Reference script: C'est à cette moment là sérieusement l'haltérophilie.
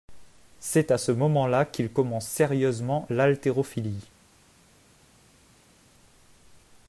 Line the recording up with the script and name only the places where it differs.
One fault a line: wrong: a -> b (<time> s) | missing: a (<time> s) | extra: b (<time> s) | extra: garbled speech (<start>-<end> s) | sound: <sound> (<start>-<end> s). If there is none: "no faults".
wrong: cette -> ce (1.0 s)
extra: qu'il commence (1.6 s)